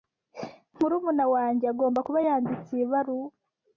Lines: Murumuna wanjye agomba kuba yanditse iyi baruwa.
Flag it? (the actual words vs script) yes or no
no